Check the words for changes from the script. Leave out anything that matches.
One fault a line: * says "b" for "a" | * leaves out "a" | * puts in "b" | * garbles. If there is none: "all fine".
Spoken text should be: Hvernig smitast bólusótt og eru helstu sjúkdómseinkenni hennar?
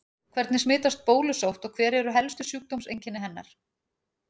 * puts in "hver"